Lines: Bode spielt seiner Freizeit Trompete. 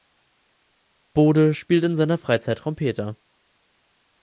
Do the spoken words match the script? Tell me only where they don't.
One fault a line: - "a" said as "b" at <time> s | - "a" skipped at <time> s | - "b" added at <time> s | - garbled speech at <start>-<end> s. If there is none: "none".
- "in" added at 1.8 s